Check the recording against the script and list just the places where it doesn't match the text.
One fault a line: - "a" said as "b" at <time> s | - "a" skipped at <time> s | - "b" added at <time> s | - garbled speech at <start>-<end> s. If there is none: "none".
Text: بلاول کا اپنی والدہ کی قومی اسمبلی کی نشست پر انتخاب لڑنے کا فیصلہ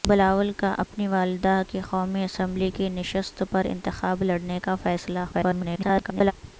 - garbled speech at 5.3-6.3 s